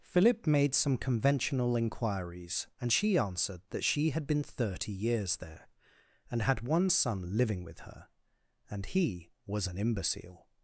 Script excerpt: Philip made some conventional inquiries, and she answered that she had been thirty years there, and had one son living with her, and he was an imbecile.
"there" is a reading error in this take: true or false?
false